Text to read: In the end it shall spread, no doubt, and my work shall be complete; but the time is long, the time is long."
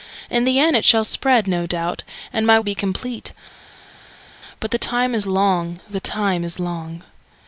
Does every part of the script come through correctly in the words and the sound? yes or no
no